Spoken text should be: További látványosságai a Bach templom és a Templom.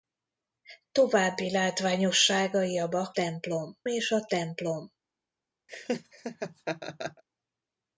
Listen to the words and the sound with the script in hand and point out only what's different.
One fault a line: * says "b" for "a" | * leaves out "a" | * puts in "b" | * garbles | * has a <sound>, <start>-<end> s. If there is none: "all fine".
* has a laugh, 5.7-7.2 s